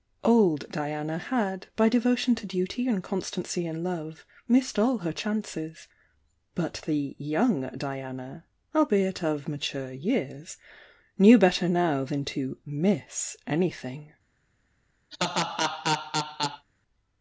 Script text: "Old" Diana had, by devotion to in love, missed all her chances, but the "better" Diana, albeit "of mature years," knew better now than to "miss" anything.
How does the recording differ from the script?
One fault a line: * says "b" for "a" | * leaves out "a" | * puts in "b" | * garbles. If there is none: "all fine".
* puts in "duty and constancy"
* says "young" for "better"